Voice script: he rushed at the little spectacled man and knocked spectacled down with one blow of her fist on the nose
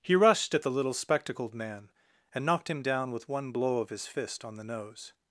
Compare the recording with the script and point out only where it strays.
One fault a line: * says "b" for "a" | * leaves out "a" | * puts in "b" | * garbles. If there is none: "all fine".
* says "him" for "spectacled"
* says "his" for "her"